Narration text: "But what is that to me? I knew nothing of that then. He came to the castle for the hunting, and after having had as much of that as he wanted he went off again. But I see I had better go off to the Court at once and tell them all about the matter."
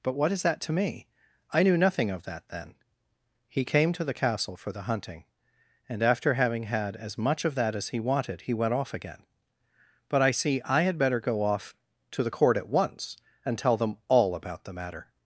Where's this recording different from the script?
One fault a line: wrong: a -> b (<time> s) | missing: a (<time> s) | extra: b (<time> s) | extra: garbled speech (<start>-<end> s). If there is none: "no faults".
no faults